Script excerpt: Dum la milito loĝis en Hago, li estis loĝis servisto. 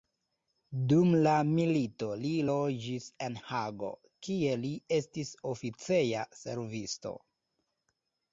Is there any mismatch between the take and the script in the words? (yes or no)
yes